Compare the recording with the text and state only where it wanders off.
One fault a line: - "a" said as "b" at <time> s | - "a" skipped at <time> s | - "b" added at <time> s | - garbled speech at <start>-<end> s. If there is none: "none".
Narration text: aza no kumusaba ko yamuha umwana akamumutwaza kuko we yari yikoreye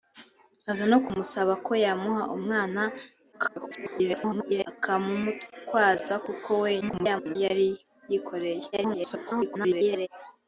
- garbled speech at 3.3-4.7 s
- garbled speech at 6.8-7.4 s
- garbled speech at 8.7-10.1 s